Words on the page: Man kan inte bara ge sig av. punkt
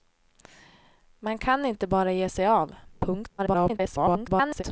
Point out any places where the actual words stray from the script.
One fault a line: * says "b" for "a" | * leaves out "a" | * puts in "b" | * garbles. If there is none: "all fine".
* garbles